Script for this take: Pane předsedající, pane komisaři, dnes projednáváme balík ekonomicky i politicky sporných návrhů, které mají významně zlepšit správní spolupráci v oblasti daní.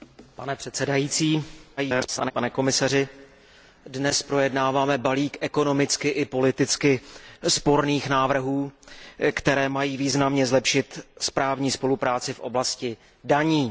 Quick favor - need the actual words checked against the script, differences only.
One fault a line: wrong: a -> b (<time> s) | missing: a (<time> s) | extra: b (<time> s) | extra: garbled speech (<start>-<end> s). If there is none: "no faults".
extra: garbled speech (1.8-2.3 s)